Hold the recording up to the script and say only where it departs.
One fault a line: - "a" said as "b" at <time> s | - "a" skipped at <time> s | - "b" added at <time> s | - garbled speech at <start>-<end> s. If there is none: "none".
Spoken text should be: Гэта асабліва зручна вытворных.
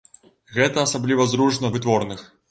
none